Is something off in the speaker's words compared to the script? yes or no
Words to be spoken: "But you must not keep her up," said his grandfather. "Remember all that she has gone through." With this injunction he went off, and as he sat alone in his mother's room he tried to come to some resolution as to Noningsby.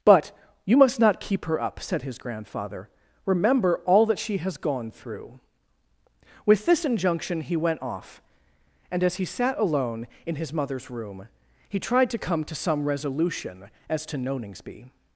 no